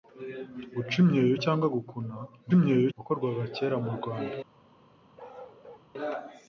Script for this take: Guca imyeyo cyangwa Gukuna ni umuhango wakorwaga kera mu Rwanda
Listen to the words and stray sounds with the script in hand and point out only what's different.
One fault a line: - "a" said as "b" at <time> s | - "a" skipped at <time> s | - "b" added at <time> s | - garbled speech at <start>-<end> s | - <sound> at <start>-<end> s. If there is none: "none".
- "umuhango" said as "imyeyo" at 2.6 s
- bark at 5.2-5.9 s